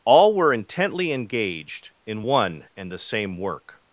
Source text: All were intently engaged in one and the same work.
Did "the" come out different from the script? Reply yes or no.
no